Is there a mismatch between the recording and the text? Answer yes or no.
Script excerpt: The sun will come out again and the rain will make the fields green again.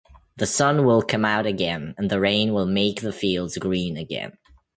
no